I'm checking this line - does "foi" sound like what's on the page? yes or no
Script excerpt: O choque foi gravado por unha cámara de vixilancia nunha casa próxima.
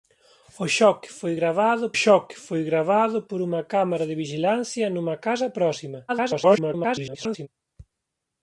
yes